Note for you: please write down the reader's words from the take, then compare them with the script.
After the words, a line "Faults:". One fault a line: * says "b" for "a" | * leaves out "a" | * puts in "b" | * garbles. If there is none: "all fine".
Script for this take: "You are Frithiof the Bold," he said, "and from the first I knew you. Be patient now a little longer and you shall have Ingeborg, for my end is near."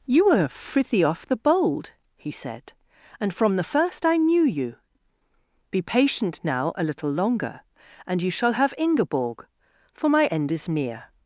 "You were Frithiof the Bold," he said, "and from the first I knew you. Be patient now a little longer and you shall have Ingeborg, for my end is near."
Faults:
* says "were" for "are"